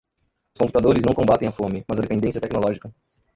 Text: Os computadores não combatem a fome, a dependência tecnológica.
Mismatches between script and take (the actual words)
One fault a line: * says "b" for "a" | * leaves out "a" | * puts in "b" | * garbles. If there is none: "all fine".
* puts in "mas"